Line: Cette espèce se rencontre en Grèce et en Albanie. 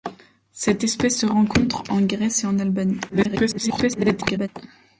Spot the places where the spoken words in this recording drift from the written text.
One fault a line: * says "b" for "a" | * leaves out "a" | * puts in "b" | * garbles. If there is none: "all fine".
* garbles